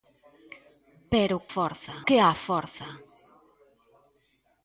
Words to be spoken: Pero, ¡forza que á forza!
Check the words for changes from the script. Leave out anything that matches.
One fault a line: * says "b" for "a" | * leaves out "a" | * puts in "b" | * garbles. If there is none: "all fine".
all fine